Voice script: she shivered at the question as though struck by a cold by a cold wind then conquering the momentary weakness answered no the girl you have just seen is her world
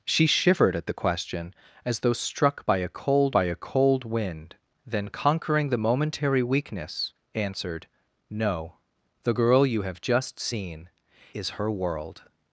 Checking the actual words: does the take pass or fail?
pass